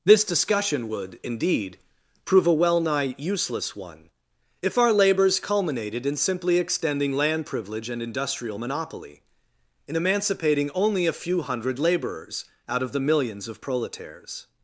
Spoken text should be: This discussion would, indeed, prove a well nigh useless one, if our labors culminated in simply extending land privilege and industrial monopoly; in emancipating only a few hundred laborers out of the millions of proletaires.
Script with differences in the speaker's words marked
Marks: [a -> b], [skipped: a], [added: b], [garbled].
This discussion would, indeed, prove a well nigh useless one, if our labors culminated in simply extending land privilege and industrial monopoly; in emancipating only a few hundred laborers out of the millions of proletaires.